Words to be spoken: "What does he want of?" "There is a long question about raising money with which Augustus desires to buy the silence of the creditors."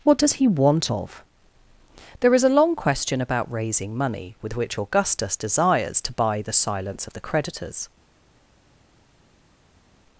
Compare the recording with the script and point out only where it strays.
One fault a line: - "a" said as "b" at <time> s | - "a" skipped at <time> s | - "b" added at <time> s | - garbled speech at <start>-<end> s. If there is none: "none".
none